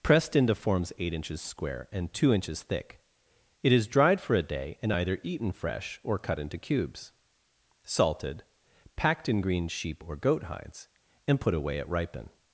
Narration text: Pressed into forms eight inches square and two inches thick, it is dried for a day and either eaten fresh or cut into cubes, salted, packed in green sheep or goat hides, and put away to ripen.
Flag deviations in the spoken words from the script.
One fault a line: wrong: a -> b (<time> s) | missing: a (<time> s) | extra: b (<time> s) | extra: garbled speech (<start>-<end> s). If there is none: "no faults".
wrong: to -> at (11.8 s)